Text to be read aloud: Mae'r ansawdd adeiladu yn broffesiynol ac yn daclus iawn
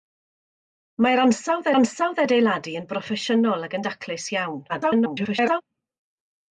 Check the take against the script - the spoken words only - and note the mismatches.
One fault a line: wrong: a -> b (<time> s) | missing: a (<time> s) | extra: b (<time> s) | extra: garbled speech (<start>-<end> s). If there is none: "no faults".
extra: ansawdd (1.8 s)
extra: garbled speech (4.7-5.6 s)